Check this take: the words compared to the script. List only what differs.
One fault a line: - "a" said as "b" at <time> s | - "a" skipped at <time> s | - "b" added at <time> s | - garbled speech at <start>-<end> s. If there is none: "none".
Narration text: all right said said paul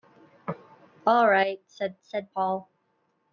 none